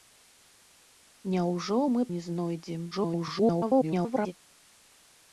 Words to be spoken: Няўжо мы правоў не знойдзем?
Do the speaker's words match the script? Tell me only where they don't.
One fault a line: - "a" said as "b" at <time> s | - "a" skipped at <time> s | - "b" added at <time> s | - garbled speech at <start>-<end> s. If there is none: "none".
- "правоў" skipped at 2.0 s
- garbled speech at 2.9-4.3 s